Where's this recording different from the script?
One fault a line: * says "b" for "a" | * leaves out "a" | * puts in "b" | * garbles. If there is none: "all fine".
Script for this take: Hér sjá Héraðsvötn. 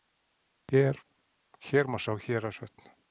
* puts in "má"